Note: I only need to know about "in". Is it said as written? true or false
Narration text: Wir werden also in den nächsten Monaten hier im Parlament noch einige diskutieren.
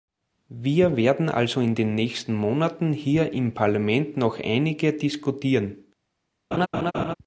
true